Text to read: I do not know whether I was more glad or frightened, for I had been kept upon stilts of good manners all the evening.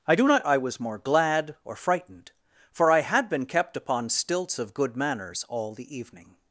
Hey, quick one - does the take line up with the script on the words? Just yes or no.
no